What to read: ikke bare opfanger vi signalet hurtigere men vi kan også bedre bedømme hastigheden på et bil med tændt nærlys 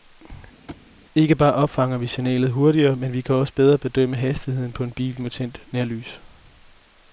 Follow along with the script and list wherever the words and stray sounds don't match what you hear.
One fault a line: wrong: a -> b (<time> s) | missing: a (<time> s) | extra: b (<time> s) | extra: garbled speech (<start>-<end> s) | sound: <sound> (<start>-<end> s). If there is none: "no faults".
sound: thud (0.7-0.9 s)
wrong: et -> en (4.8 s)